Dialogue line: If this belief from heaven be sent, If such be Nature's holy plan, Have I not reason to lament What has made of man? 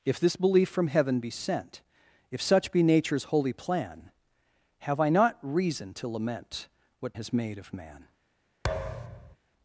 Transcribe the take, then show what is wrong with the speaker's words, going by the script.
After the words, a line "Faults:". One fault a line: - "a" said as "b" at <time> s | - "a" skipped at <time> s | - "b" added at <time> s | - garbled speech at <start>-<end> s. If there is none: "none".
If this belief from heaven be sent, If such be Nature's holy plan, Have I not reason to lament What has made of man?
Faults:
none